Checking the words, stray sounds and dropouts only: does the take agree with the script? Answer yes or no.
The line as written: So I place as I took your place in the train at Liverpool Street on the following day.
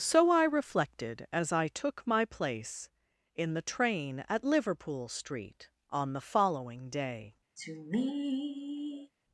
no